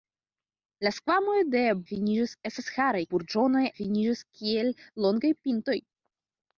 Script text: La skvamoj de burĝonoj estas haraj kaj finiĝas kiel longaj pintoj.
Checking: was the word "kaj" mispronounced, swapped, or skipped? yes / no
yes